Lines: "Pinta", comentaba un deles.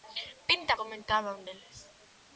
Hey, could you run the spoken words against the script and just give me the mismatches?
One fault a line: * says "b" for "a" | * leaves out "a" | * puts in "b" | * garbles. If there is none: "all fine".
all fine